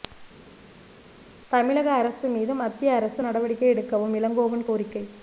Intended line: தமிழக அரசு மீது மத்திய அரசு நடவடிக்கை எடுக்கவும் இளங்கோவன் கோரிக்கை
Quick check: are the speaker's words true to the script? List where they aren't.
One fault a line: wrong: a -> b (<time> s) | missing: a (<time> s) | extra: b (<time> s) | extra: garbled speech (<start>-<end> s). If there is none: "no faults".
no faults